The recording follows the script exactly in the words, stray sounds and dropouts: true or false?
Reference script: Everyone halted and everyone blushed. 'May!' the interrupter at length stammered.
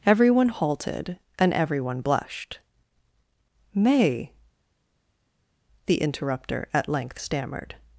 true